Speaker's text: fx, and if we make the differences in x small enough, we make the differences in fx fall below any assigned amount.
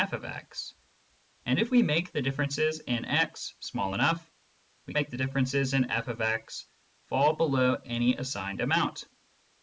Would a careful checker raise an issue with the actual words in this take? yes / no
no